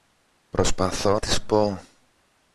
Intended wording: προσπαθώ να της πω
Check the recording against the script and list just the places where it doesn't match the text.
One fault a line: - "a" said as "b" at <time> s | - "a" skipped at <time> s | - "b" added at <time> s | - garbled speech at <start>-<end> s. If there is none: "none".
- "να" skipped at 1.2 s